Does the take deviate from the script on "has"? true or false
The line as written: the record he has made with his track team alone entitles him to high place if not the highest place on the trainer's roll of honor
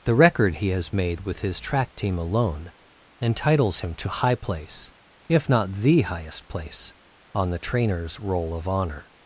false